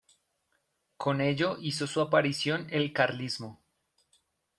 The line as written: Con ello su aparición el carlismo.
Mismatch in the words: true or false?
true